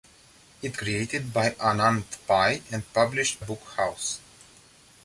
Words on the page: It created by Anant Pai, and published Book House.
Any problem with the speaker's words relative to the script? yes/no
no